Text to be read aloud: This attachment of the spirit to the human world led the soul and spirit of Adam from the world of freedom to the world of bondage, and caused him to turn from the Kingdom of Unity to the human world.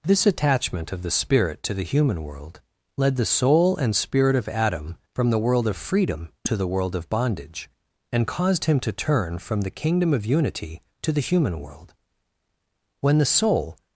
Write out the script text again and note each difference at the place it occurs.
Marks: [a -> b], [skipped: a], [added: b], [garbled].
This attachment of the spirit to the human world led the soul and spirit of Adam from the world of freedom to the world of bondage, and caused him to turn from the Kingdom of Unity to the human world. [added: When the soul]